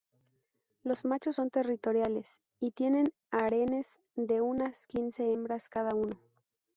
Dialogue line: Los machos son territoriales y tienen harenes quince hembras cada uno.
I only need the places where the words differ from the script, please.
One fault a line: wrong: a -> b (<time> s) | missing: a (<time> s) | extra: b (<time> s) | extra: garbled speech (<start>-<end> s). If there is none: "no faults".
extra: de unas (4.1 s)